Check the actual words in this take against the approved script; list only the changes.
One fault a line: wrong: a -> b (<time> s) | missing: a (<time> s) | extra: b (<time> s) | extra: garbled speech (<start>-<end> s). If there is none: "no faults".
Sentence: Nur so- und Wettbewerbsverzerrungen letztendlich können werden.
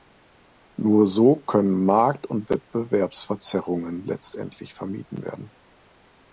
extra: können Markt (1.4 s)
wrong: können -> vermieden (4.7 s)